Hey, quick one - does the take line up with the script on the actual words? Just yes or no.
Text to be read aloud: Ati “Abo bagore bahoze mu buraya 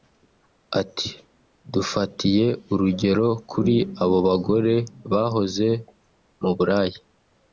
no